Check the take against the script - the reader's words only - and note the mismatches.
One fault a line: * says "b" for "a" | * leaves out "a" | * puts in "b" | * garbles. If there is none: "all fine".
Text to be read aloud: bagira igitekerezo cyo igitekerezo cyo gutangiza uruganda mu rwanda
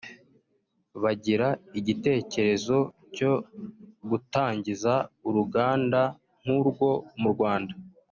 * leaves out "igitekerezo cyo"
* puts in "nk'urwo"